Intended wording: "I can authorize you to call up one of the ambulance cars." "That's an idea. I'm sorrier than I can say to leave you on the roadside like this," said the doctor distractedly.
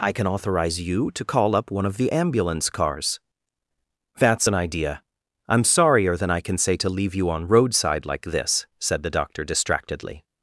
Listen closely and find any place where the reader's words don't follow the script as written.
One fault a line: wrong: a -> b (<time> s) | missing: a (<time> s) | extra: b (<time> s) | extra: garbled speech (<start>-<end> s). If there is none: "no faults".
missing: the (7.5 s)